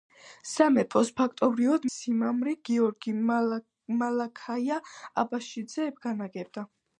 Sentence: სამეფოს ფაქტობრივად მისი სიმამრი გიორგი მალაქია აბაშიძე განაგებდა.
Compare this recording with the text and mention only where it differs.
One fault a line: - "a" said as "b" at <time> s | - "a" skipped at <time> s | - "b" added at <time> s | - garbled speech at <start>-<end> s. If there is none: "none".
- "მისი" skipped at 1.9 s